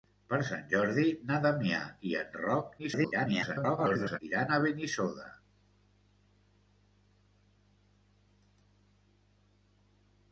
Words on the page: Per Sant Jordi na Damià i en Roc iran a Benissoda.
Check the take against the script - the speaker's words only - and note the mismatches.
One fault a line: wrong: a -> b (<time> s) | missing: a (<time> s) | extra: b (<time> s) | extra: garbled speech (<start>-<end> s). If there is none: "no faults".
extra: garbled speech (2.8-4.2 s)